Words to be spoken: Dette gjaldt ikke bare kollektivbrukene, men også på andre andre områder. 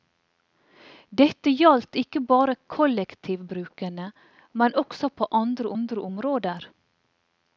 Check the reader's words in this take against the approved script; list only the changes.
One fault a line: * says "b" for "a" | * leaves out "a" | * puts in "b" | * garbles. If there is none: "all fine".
all fine